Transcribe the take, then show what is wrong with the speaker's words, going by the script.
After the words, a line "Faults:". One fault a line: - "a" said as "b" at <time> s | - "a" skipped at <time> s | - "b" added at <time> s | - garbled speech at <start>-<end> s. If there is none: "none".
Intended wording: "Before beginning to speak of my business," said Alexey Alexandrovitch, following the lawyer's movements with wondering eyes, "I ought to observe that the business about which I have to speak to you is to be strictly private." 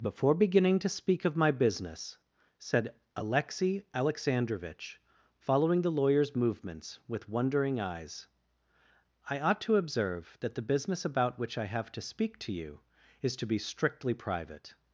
"Before beginning to speak of my business," said Alexey Alexandrovitch, following the lawyer's movements with wondering eyes, "I ought to observe that the business about which I have to speak to you is to be strictly private."
Faults:
none